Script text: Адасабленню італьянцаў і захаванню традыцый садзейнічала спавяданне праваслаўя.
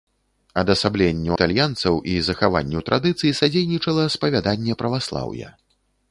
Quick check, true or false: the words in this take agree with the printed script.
true